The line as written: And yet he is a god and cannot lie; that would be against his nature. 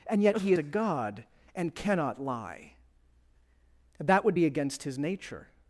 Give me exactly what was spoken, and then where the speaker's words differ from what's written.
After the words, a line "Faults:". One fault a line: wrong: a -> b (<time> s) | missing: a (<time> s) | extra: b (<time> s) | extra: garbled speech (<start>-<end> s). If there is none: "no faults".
And yet he a god and cannot lie; that would be against his nature.
Faults:
missing: is (0.5 s)